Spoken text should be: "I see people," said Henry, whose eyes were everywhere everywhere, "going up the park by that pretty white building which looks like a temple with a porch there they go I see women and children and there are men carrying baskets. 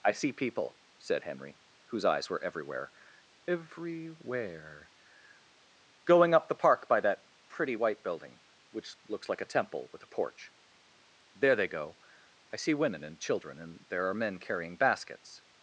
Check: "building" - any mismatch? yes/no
no